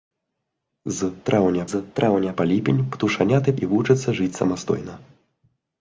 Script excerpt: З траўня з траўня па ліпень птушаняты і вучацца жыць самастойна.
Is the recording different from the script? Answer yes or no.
no